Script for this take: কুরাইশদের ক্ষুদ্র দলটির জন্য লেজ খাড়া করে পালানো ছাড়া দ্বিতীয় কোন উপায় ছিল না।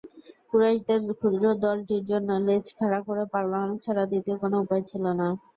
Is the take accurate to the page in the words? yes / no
yes